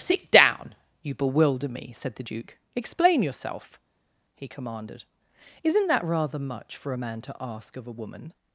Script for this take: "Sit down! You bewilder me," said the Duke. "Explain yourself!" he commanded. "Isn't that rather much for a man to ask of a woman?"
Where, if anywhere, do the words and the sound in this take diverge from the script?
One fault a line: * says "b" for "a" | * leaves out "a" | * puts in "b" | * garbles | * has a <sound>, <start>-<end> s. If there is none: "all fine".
all fine